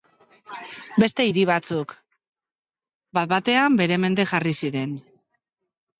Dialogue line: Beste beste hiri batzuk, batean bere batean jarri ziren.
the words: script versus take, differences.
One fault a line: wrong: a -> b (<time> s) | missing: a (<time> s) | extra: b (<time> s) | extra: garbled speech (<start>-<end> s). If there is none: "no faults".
missing: beste (1.2 s)
extra: bat (3.2 s)
wrong: batean -> mende (4.0 s)